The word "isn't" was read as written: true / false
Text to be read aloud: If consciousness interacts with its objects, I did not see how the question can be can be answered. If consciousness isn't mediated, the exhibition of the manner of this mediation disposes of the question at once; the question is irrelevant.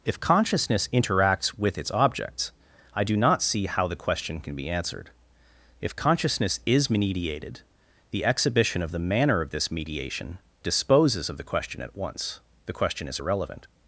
false